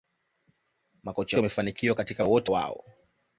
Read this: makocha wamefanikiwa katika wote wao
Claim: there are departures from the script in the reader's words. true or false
false